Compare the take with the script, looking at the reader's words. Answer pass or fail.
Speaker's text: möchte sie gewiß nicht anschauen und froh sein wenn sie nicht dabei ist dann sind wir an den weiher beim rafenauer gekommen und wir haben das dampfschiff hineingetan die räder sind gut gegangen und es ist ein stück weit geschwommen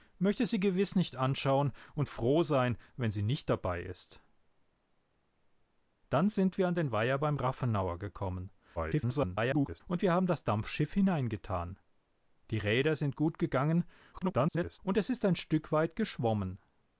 fail